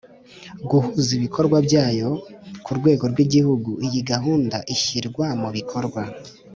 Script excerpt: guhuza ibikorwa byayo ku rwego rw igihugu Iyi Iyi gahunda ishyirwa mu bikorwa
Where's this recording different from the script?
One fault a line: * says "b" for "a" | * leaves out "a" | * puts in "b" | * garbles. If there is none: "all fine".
* leaves out "Iyi"